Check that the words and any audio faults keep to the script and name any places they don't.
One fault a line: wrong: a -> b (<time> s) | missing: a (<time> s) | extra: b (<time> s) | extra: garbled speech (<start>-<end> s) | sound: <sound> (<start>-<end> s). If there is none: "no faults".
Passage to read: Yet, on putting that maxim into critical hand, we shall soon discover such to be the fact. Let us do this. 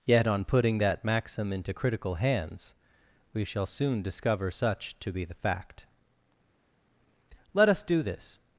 wrong: hand -> hands (2.2 s)